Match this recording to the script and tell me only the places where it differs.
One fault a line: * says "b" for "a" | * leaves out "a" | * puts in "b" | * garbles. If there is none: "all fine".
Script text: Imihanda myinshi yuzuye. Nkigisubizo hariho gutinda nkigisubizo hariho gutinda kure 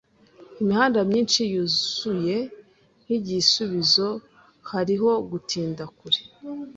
* leaves out "nkigisubizo hariho gutinda"